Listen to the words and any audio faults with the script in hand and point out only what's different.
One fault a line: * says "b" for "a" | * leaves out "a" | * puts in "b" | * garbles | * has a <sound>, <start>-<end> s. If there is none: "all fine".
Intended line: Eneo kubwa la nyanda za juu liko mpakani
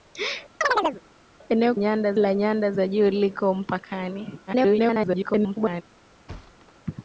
* has a chirp, 0.6-1.0 s
* says "nyanda" for "kubwa"
* garbles
* has a thud, 6.3-6.7 s